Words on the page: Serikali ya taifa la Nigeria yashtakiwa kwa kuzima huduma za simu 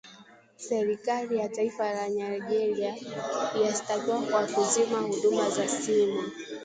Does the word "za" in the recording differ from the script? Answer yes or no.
no